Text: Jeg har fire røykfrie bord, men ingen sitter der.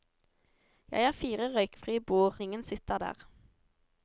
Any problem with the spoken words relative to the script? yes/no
yes